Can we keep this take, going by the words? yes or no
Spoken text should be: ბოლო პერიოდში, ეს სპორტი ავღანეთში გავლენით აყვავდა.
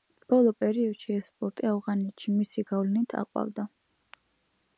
no